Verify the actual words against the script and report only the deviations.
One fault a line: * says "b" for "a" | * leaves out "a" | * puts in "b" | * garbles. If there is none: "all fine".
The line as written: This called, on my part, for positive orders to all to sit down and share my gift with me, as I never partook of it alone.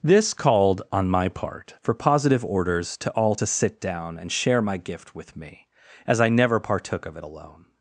all fine